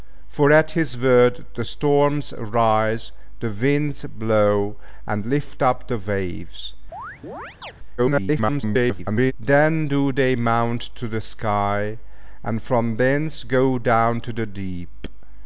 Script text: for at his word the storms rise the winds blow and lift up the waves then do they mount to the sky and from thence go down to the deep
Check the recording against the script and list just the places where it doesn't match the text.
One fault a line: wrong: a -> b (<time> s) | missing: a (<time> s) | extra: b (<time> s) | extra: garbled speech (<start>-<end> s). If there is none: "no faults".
extra: garbled speech (8.0-9.3 s)